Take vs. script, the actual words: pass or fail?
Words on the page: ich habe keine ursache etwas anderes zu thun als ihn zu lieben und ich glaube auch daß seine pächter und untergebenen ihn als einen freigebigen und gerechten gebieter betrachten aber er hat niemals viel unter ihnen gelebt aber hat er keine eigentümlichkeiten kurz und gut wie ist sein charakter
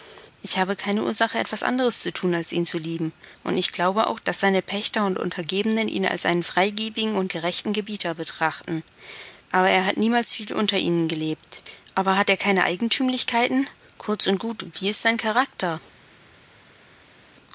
pass